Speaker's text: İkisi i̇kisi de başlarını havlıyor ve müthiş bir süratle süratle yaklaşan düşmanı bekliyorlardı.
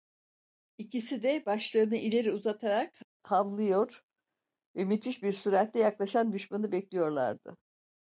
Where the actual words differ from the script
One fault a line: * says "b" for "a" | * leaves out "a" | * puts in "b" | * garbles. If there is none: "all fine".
* leaves out "i̇kisi"
* puts in "ileri uzatarak"
* leaves out "süratle"